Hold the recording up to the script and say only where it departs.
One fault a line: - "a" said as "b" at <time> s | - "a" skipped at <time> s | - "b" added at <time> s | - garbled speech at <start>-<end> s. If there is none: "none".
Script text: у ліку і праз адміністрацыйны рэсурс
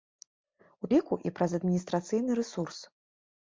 none